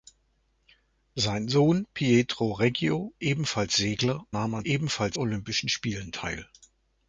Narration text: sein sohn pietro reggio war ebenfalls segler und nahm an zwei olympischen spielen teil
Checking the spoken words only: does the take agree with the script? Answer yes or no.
no